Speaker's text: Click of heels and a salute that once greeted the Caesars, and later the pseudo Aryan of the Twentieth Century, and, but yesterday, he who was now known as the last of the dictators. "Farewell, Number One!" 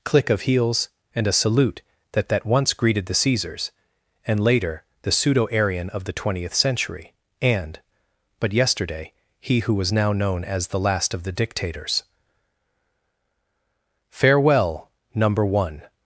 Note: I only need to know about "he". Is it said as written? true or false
true